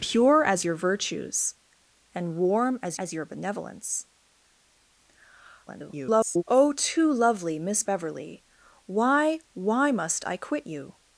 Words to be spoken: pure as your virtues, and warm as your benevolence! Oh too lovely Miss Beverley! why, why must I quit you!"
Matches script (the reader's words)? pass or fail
fail